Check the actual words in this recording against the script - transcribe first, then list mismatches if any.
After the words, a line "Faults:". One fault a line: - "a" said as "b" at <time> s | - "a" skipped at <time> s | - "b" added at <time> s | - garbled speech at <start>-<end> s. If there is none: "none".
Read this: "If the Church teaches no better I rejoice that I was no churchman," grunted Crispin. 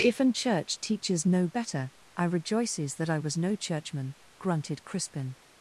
"If an Church teaches no better I rejoices that I was no churchman," grunted Crispin.
Faults:
- "the" said as "an" at 0.2 s
- "rejoice" said as "rejoices" at 2.2 s